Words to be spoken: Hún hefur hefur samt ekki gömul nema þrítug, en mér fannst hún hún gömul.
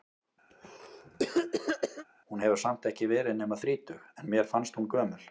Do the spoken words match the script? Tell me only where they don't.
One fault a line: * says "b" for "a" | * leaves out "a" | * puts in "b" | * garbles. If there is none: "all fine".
* leaves out "hefur"
* says "verið" for "gömul"
* leaves out "hún"